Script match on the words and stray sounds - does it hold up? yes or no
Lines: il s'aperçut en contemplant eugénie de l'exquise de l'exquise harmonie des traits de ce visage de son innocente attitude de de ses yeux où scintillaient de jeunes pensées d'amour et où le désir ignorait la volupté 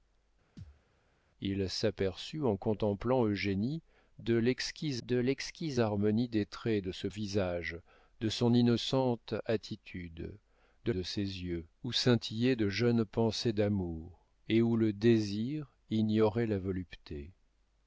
no